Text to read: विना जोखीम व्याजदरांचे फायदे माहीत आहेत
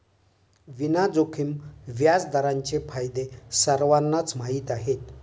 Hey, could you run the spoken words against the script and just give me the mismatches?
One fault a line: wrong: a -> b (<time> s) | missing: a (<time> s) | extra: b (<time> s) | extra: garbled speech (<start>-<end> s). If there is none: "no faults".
extra: सर्वांनाच (3.5 s)